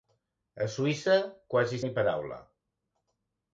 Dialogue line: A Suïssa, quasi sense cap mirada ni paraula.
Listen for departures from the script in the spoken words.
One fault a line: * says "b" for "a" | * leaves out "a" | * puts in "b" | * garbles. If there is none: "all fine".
* leaves out "sense cap mirada"